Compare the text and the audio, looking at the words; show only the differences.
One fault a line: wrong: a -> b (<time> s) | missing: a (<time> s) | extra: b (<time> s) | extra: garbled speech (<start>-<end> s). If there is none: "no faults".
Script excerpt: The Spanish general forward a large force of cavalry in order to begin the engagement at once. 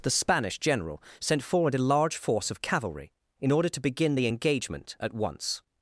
extra: sent (1.2 s)